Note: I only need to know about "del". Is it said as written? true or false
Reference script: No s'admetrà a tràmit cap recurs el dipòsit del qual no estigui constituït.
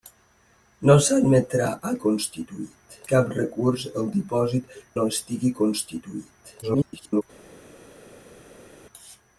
false